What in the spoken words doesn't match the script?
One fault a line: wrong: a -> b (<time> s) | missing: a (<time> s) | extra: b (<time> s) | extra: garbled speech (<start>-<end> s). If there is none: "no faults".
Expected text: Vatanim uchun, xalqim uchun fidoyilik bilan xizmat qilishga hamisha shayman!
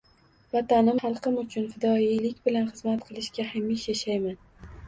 missing: uchun (1.0 s)